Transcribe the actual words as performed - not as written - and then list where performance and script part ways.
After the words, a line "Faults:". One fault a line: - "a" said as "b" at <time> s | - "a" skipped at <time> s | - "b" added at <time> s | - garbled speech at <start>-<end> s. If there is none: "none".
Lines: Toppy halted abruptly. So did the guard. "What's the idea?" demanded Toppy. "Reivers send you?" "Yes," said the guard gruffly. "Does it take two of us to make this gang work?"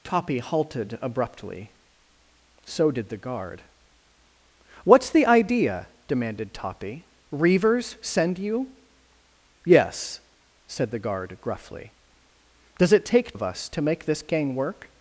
Toppy halted abruptly. So did the guard. "What's the idea?" demanded Toppy. "Reivers send you?" "Yes," said the guard gruffly. "Does it take of us to make this gang work?"
Faults:
- "two" skipped at 13.3 s